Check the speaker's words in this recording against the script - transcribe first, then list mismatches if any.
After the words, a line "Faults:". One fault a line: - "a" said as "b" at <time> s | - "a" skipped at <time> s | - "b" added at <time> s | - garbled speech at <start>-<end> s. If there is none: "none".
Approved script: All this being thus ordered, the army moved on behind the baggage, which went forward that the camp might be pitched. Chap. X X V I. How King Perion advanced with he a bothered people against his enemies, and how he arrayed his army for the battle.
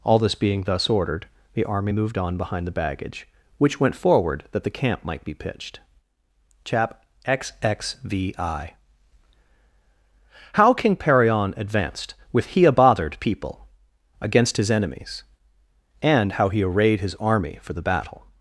All this being thus ordered, the army moved on behind the baggage, which went forward that the camp might be pitched. Chap. X X V I. How King Perion advanced with he a bothered people against his enemies, and how he arrayed his army for the battle.
Faults:
none